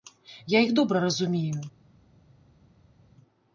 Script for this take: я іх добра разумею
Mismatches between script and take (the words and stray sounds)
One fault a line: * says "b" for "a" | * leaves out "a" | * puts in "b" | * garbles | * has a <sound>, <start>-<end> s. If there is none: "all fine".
all fine